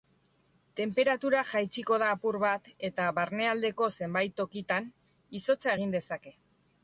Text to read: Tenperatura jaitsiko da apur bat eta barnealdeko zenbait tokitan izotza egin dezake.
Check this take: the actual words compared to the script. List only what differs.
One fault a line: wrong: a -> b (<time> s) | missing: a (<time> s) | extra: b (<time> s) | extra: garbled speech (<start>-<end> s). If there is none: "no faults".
no faults